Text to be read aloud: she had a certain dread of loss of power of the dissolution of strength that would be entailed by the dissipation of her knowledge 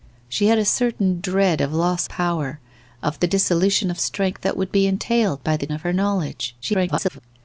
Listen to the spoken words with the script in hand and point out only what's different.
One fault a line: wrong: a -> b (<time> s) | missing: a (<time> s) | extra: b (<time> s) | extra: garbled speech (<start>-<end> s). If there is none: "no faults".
missing: of (2.1 s)
missing: dissipation (5.7 s)
extra: garbled speech (6.6-7.2 s)